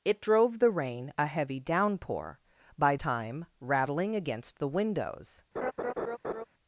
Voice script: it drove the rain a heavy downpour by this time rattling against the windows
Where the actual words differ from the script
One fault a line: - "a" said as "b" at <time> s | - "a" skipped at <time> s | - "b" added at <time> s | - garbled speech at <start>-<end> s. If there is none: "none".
- "this" skipped at 2.9 s